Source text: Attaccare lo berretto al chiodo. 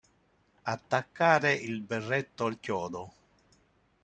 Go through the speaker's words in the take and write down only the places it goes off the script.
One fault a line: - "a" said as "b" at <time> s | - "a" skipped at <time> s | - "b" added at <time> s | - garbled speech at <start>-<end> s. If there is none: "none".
- "lo" said as "il" at 1.5 s